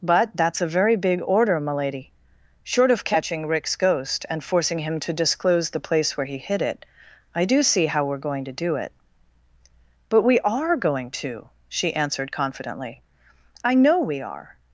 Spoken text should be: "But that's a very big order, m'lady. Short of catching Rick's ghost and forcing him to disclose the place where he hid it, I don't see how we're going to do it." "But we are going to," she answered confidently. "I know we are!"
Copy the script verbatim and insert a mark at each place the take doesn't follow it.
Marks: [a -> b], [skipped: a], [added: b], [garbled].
"But that's a very big order, m'lady. Short of catching Rick's ghost and forcing him to disclose the place where he hid it, I [don't -> do] see how we're going to do it." "But we are going to," she answered confidently. "I know we are!"